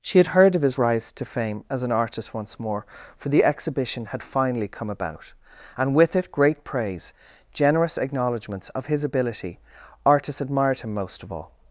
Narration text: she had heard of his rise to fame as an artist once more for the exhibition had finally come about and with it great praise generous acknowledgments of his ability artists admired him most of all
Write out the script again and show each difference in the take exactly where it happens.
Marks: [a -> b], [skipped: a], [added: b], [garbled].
she had heard of his rise to fame as an artist once more for the exhibition had finally come about and with it great praise generous acknowledgments of his ability artists admired him most of all